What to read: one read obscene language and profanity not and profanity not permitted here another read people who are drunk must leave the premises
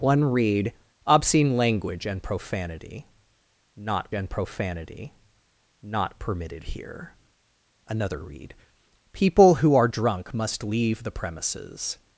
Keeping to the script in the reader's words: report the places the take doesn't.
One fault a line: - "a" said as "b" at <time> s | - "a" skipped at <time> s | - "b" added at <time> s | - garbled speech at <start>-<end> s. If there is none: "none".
none